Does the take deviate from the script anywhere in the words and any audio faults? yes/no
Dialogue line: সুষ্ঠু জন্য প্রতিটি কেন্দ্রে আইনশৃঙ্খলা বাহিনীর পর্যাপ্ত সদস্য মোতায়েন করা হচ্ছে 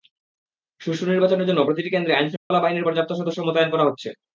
yes